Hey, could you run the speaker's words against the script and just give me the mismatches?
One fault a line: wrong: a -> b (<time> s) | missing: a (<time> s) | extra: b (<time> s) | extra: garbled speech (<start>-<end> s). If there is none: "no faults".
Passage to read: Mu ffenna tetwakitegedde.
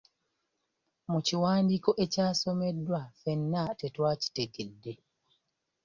extra: kiwandiiko ekyasomeddwa (1.3 s)